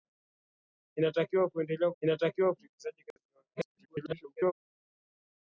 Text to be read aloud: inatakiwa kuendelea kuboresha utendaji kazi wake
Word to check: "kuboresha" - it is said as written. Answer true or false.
false